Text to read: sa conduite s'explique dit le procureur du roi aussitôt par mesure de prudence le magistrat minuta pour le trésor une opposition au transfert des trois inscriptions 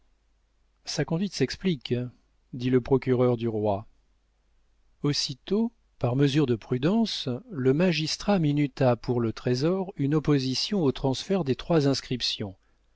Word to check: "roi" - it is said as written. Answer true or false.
true